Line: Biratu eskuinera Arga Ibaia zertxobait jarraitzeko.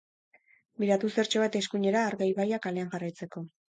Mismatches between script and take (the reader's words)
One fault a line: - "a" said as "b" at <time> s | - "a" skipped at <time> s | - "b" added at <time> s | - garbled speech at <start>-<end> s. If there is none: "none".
- "zertxobait" added at 1.2 s
- "zertxobait" said as "kalean" at 2.7 s